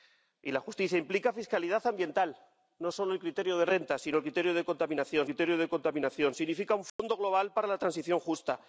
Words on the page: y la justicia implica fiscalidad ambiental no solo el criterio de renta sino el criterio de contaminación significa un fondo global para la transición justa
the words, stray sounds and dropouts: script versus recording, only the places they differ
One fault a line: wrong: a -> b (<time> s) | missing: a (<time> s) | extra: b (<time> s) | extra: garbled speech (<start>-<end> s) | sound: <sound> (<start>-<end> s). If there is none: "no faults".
extra: criterio de contaminación (5.3 s)
sound: dropout (6.9-7.0 s)